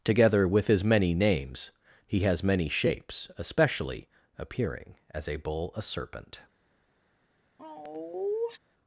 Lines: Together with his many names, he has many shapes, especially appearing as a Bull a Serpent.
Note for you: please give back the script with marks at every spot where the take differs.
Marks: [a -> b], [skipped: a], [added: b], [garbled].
Together with his many names, he has many shapes, especially appearing as a Bull a Serpent.